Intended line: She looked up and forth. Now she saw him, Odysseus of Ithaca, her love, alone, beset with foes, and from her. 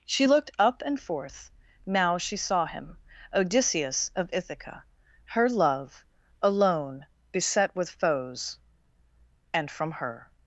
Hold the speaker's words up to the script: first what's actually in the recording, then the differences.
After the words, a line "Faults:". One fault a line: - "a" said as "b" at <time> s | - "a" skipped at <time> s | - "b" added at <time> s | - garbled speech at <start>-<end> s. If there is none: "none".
She looked up and forth. Now she saw him, Odysseus of Ithaca, her love, alone, beset with foes, and from her.
Faults:
none